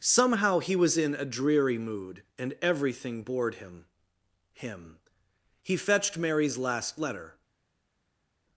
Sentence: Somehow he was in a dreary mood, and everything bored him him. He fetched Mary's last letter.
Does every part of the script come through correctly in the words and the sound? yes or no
yes